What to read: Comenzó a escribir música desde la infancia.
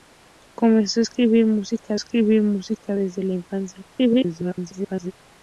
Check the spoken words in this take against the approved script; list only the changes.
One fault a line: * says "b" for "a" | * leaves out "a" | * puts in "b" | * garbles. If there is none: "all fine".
* puts in "escribir música"
* garbles